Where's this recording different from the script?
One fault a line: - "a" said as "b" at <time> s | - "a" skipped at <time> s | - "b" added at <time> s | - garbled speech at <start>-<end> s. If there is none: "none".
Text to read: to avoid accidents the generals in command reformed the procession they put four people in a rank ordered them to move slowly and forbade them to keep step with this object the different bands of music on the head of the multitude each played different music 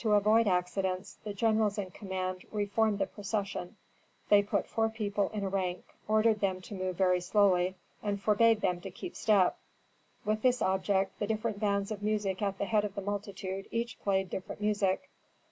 - "very" added at 7.0 s
- "on" said as "at" at 12.4 s